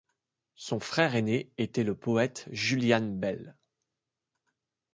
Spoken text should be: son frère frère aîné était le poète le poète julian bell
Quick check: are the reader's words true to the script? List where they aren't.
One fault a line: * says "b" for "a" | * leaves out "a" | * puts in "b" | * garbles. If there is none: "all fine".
* leaves out "frère"
* leaves out "le poète"